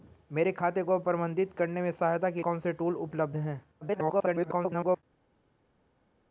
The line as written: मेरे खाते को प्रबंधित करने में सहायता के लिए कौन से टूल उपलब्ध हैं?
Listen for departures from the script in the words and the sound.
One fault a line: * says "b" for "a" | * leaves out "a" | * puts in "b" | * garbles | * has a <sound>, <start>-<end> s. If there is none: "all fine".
* leaves out "लिए"
* garbles